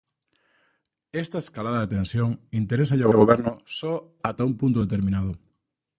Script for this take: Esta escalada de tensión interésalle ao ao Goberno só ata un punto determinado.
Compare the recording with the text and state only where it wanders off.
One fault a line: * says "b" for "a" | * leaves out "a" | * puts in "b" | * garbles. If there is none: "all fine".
all fine